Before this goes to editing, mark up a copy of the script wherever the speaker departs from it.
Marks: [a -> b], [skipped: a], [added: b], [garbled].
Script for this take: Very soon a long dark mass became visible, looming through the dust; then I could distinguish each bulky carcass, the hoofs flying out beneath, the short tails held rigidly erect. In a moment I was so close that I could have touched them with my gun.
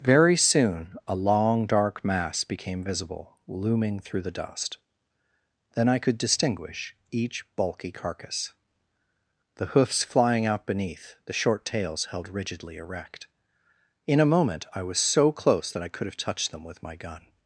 Very soon a long dark mass became visible, looming through the dust; then I could distinguish each bulky carcass, the hoofs flying out beneath, the short tails held rigidly erect. In a moment I was so close that I could have touched them with my gun.